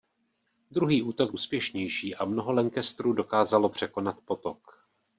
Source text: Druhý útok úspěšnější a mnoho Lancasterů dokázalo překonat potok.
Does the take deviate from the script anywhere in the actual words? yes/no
no